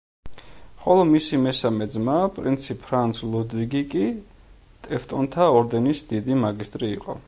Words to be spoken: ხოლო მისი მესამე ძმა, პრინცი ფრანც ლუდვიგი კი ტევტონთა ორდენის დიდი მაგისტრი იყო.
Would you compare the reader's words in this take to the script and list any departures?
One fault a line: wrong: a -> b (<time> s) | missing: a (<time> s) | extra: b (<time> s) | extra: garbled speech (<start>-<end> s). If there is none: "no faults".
no faults